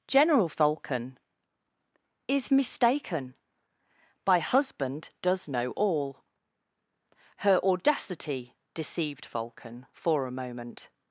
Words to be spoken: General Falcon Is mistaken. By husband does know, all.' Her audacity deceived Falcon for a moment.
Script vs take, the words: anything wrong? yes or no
no